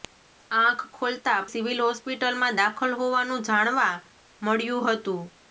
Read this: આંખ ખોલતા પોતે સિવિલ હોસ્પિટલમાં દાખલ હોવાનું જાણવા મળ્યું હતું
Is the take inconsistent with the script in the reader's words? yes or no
yes